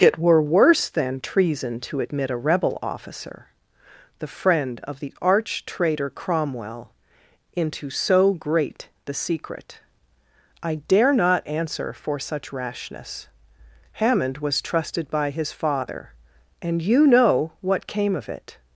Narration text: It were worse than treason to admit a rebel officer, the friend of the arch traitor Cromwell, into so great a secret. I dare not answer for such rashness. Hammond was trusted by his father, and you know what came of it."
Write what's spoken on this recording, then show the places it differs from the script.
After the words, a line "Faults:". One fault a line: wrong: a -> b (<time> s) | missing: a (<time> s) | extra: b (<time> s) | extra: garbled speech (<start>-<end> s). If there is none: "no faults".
It were worse than treason to admit a rebel officer, the friend of the arch traitor Cromwell, into so great the secret. I dare not answer for such rashness. Hammond was trusted by his father, and you know what came of it."
Faults:
wrong: a -> the (9.1 s)